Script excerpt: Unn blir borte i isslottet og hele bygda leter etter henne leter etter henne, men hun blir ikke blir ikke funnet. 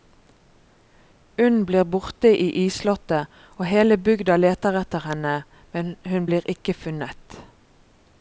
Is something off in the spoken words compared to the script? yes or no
yes